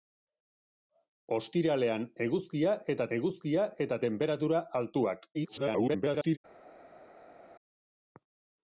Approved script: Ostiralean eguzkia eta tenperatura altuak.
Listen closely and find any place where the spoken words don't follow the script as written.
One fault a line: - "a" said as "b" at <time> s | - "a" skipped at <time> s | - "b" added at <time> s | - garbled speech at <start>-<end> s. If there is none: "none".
- "eguzkia eta" added at 3.2 s
- garbled speech at 5.3-6.4 s